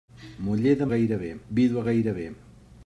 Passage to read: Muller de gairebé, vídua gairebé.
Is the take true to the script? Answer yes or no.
yes